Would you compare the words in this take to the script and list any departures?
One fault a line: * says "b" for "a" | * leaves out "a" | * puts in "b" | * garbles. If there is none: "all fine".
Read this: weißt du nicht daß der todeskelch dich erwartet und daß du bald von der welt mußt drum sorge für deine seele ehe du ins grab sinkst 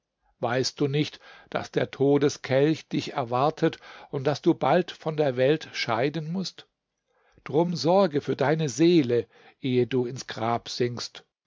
* puts in "scheiden"